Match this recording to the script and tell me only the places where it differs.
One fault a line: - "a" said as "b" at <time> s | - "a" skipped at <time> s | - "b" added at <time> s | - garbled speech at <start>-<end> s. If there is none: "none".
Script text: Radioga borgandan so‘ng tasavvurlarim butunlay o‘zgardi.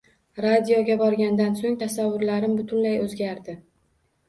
none